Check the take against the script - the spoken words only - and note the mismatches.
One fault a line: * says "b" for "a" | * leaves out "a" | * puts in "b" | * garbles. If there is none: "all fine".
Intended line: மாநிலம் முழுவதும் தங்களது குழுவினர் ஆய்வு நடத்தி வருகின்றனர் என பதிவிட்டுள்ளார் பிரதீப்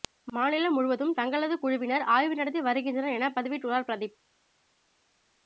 all fine